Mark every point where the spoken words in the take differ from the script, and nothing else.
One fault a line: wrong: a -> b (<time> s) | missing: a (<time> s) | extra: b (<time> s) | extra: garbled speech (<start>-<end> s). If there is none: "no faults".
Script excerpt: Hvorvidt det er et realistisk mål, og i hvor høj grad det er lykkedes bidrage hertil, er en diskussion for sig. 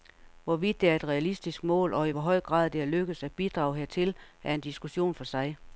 extra: at (3.2 s)